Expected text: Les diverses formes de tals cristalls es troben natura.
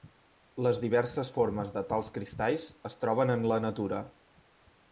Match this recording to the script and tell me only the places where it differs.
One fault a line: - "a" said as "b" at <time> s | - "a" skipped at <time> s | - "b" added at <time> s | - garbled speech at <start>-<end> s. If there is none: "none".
- "en la" added at 3.4 s